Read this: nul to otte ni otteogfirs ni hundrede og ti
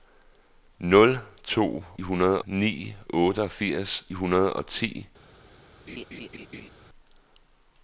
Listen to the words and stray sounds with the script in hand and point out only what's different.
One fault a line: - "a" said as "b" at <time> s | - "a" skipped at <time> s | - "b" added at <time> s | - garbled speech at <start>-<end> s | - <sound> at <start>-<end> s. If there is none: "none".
- "otte" said as "hundrede" at 2.0 s
- "ni" skipped at 4.1 s
- laugh at 5.9-6.7 s